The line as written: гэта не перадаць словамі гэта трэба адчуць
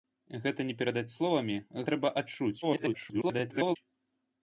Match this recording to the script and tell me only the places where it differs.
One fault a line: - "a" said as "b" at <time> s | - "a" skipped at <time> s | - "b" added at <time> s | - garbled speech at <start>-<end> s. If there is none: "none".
- "гэта" skipped at 1.6 s
- garbled speech at 2.6-3.8 s